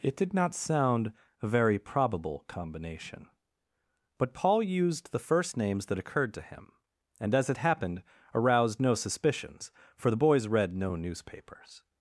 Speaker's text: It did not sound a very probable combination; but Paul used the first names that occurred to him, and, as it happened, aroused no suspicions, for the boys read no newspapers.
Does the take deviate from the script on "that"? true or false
false